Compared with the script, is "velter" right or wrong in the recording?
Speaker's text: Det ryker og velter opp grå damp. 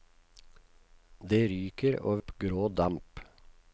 wrong